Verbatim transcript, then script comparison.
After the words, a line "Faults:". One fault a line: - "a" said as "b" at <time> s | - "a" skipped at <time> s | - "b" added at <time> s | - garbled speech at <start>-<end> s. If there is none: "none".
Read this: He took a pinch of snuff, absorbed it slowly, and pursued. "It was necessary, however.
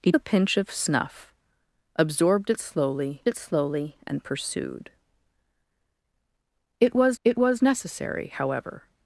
He a pinch of snuff, absorbed it slowly it slowly, and pursued. "It was it was necessary, however.
Faults:
- "took" skipped at 0.1 s
- "it slowly" added at 3.3 s
- "it was" added at 7.2 s